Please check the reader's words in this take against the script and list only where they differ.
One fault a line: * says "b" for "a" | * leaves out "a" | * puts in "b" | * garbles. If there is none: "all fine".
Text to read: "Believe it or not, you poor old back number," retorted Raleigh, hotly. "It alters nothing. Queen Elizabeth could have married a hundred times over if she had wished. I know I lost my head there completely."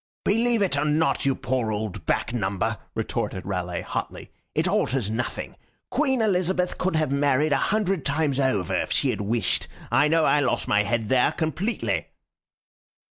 all fine